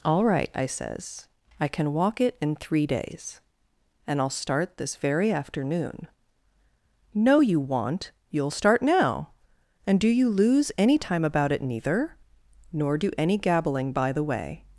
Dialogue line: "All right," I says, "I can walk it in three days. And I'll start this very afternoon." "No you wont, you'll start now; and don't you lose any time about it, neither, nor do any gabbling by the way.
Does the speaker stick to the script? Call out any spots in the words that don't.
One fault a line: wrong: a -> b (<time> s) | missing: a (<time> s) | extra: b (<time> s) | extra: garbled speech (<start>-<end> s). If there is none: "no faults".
wrong: don't -> do (10.0 s)